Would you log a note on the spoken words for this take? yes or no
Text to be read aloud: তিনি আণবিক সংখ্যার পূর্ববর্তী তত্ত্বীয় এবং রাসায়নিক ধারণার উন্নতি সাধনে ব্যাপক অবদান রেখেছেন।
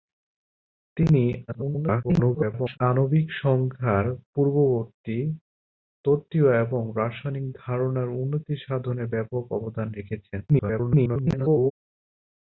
yes